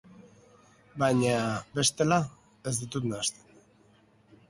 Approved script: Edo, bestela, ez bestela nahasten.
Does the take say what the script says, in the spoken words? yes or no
no